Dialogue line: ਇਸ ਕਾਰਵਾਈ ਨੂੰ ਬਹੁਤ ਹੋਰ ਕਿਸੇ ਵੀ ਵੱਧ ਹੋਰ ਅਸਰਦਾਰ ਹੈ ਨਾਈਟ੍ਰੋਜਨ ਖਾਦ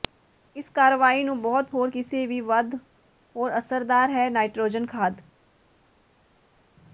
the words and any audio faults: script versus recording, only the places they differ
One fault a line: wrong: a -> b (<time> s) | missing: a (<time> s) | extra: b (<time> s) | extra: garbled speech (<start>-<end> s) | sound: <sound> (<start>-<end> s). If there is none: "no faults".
no faults